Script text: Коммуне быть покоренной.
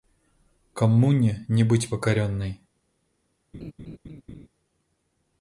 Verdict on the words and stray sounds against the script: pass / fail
fail